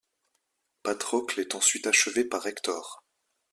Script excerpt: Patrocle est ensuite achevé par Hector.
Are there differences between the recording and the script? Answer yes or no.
no